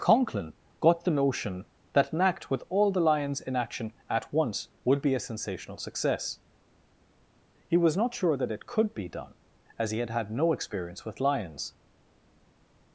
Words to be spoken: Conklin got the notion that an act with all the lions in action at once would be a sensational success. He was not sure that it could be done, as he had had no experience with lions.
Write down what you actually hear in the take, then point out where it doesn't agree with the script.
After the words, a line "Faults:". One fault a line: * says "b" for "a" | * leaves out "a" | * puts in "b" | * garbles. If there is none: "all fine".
Conklin got the notion that an act with all the lions in action at once would be a sensational success. He was not sure that it could be done, as he had had no experience with lions.
Faults:
all fine